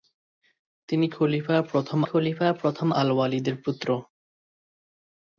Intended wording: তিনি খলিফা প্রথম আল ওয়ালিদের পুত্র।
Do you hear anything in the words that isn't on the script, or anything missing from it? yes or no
yes